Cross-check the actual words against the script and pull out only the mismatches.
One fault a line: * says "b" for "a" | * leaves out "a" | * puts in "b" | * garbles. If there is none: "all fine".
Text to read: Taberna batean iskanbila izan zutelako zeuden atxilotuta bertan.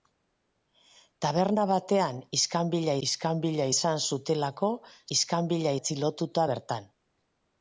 * puts in "iskanbila"
* says "iskanbila" for "zeuden"